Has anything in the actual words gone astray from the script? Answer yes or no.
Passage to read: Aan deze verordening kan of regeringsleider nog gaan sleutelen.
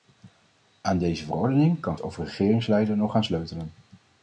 no